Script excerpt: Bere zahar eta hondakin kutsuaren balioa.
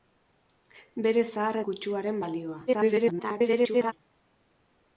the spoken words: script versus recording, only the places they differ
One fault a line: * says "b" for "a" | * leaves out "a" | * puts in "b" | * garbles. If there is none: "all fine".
* leaves out "eta hondakin"
* garbles